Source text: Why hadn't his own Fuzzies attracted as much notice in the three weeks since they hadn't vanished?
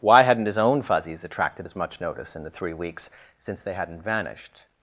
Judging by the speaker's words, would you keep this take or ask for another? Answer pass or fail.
pass